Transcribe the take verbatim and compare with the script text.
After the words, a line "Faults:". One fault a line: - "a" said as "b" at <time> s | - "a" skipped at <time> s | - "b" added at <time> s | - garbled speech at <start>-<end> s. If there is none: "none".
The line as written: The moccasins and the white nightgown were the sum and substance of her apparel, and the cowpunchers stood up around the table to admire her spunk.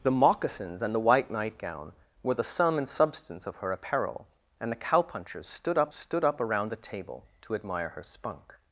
The moccasins and the white nightgown were the sum and substance of her apparel, and the cowpunchers stood up stood up around the table to admire her spunk.
Faults:
- "stood up" added at 5.9 s